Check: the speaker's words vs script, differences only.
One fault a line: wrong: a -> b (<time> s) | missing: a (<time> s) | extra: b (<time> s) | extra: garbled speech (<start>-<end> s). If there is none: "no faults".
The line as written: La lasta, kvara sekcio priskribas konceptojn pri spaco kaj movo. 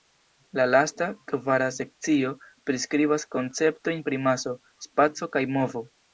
extra: maso (4.3 s)